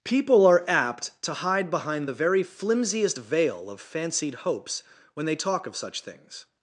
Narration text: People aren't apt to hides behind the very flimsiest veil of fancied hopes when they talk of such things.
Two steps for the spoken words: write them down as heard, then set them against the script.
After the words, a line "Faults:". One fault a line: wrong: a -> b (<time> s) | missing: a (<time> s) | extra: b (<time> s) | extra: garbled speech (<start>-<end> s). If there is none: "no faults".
People are apt to hide behind the very flimsiest veil of fancied hopes when they talk of such things.
Faults:
wrong: aren't -> are (0.5 s)
wrong: hides -> hide (1.3 s)